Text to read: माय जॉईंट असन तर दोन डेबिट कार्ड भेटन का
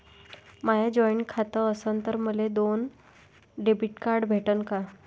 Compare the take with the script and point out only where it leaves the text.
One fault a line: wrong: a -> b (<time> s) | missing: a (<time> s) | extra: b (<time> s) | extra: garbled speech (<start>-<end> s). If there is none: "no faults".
extra: खातं (1.3 s)
extra: मले (2.2 s)